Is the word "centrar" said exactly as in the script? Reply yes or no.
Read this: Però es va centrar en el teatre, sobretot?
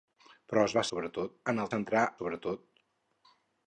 no